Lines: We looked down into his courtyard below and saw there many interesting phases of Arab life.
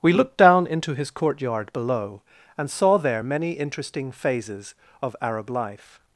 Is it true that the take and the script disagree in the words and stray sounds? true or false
false